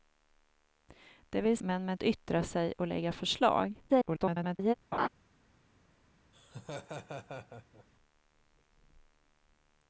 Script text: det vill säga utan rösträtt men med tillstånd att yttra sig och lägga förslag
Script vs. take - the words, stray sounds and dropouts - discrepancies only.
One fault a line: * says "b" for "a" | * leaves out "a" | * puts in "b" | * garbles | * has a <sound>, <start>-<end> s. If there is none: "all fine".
* leaves out "säga utan rösträtt"
* leaves out "tillstånd att"
* garbles
* has a laugh, 4.9-5.1 s
* has a laugh, 6.3-7.9 s